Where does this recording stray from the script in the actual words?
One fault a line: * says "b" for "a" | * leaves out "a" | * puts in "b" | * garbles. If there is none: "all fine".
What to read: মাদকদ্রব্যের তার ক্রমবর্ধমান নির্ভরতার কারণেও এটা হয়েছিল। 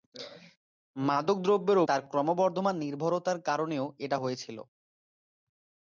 all fine